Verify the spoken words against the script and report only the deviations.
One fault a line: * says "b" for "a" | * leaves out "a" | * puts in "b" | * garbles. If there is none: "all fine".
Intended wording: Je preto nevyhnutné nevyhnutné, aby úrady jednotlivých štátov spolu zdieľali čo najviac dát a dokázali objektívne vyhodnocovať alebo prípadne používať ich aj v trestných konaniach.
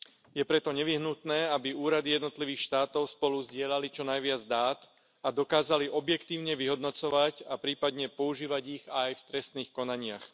* leaves out "nevyhnutné"
* says "a" for "alebo"